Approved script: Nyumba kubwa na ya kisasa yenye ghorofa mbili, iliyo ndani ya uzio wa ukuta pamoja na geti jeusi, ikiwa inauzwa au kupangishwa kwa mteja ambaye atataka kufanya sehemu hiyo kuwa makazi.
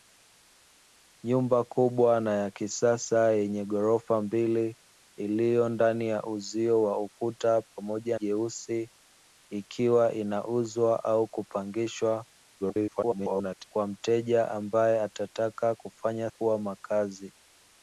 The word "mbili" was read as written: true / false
true